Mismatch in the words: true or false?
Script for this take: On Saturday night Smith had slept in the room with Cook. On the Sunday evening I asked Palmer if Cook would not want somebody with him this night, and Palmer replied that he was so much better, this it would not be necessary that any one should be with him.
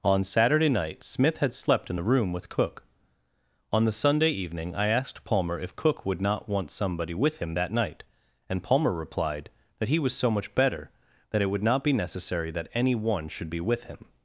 true